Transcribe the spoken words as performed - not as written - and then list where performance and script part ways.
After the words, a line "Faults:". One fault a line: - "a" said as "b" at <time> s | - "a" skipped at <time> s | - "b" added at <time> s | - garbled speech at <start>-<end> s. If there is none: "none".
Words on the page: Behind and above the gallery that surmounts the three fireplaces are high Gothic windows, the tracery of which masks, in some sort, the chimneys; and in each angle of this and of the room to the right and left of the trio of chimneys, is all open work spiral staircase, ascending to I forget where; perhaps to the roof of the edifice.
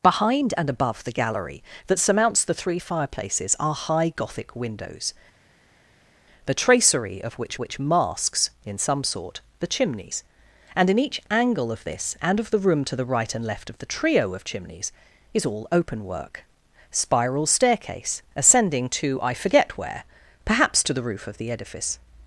Behind and above the gallery that surmounts the three fireplaces are high Gothic windows, the tracery of which which masks, in some sort, the chimneys; and in each angle of this and of the room to the right and left of the trio of chimneys, is all open work spiral staircase, ascending to I forget where; perhaps to the roof of the edifice.
Faults:
- "which" added at 7.5 s